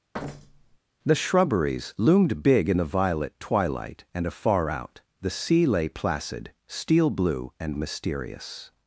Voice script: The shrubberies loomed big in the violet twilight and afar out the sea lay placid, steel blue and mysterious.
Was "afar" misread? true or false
false